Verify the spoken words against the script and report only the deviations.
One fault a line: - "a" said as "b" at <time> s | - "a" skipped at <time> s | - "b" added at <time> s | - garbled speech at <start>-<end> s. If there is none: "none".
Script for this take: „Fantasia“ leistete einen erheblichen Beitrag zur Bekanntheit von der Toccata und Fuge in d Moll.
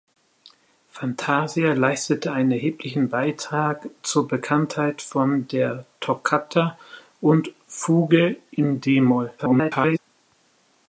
- garbled speech at 9.4-10.0 s